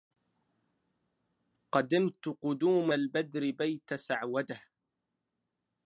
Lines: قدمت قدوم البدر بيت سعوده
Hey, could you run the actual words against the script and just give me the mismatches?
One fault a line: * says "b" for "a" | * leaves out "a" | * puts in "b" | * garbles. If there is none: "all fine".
all fine